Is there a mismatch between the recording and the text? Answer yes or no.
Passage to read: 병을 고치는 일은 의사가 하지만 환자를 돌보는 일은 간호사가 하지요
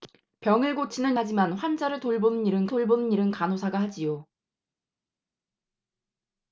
yes